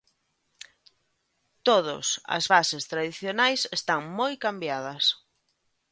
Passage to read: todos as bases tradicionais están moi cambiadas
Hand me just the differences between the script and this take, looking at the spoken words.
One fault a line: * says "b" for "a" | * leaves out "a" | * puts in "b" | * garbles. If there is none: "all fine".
all fine